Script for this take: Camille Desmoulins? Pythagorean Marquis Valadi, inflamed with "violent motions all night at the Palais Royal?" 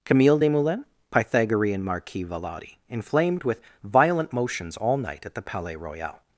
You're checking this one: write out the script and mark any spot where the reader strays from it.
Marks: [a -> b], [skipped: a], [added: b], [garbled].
Camille Desmoulins? Pythagorean Marquis Valadi, inflamed with "violent motions all night at the Palais Royal?"